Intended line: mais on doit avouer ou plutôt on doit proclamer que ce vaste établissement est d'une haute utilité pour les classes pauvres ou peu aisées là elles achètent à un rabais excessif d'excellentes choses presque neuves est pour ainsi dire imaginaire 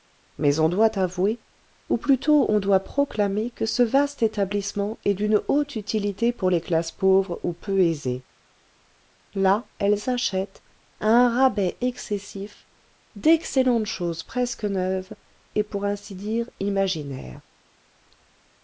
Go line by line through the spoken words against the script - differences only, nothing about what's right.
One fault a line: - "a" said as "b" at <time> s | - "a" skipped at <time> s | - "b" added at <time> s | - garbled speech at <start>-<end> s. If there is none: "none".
none